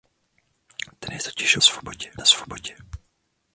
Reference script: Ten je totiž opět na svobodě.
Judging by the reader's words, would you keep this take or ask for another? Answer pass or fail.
fail